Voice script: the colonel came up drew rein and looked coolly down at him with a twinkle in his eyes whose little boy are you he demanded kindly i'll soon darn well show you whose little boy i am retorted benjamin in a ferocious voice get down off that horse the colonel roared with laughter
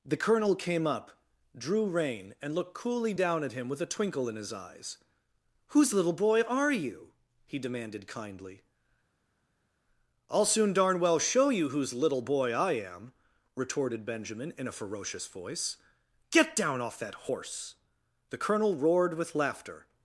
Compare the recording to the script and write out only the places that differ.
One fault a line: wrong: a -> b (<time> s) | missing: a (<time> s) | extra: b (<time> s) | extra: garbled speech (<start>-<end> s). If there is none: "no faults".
no faults